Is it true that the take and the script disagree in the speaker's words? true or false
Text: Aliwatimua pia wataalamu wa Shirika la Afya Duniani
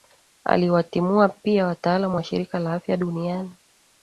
false